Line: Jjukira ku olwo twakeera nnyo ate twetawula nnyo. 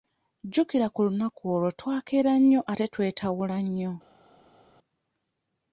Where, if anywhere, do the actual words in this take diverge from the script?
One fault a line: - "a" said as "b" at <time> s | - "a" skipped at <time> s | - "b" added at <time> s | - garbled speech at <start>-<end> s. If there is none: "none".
- "lunaku" added at 1.1 s